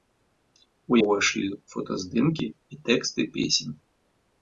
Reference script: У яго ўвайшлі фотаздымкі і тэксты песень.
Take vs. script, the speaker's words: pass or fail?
fail